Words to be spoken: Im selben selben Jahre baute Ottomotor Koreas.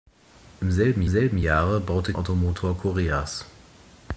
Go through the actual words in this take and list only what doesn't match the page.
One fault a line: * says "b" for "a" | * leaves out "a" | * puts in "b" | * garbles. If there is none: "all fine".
all fine